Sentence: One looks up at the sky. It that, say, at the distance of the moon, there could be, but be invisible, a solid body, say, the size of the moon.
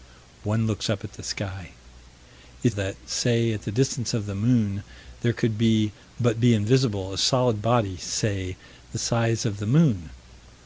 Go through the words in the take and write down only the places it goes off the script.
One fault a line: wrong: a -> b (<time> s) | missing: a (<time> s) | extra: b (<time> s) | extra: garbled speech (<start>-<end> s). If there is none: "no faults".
no faults